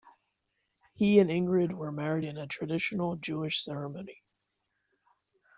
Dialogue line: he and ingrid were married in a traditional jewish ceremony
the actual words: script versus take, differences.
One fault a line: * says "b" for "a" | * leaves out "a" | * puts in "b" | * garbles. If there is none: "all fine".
all fine